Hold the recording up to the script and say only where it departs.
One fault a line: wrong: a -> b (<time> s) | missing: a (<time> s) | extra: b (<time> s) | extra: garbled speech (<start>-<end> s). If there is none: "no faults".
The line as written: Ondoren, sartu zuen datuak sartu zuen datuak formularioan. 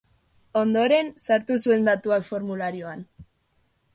missing: sartu zuen datuak (2.3 s)